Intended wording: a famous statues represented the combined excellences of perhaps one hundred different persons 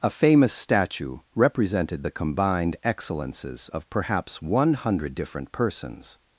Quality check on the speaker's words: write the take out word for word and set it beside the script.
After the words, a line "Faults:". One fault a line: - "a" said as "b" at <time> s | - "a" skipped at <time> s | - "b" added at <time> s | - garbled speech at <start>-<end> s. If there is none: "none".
a famous statue represented the combined excellences of perhaps one hundred different persons
Faults:
- "statues" said as "statue" at 0.5 s